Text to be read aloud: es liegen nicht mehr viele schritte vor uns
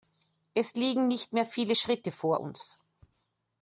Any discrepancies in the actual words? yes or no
no